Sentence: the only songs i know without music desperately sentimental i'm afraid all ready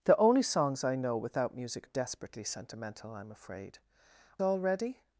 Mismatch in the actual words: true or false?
false